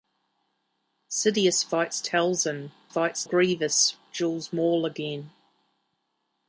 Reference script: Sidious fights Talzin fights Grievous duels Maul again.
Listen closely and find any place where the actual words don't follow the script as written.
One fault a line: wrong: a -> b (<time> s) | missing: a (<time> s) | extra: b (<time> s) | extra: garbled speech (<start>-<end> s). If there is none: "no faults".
no faults